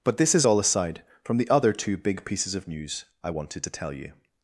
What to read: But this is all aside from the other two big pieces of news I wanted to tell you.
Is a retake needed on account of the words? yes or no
no